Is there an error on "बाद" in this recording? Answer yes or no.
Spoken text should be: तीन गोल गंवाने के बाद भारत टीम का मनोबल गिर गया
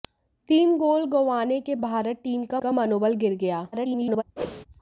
yes